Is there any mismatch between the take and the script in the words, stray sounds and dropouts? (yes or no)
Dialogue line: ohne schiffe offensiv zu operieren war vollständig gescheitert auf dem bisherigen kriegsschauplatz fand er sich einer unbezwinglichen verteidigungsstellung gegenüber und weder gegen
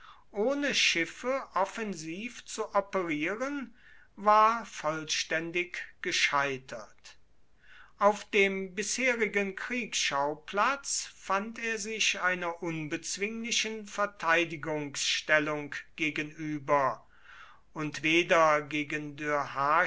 no